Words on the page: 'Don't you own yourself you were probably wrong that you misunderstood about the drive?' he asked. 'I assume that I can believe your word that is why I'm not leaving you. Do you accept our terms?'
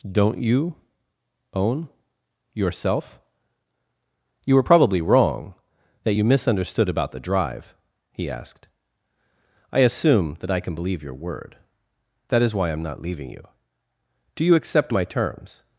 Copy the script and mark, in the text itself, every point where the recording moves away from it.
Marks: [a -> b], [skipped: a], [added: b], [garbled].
'Don't you own yourself you were probably wrong that you misunderstood about the drive?' he asked. 'I assume that I can believe your word that is why I'm not leaving you. Do you accept [our -> my] terms?'